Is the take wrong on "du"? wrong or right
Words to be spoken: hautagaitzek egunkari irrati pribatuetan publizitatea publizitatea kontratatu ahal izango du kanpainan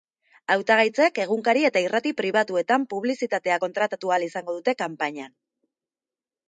wrong